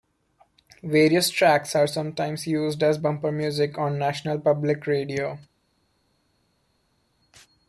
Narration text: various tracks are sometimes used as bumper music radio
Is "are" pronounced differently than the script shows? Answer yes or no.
no